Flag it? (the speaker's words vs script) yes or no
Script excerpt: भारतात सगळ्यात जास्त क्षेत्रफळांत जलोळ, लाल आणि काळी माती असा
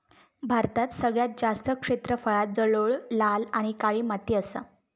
no